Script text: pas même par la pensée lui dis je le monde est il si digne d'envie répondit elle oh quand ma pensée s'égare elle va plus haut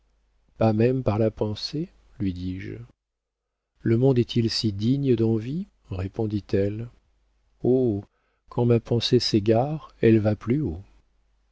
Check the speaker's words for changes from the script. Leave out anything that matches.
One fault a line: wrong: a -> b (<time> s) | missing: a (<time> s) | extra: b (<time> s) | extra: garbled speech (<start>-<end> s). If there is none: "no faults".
no faults